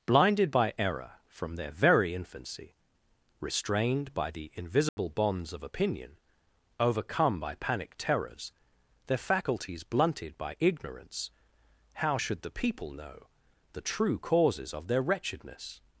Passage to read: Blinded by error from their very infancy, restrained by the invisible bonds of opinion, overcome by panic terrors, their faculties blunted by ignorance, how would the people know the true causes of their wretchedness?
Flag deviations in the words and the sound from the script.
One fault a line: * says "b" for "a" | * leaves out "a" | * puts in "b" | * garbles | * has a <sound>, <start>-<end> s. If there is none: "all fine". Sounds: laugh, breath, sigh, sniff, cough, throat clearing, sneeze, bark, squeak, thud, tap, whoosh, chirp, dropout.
* has a dropout, 4.9-5.0 s
* says "should" for "would"